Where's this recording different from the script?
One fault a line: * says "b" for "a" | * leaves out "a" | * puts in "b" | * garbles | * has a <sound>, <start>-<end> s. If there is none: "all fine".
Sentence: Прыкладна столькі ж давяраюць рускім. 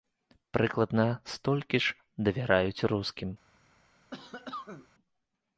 * has a cough, 4.1-4.9 s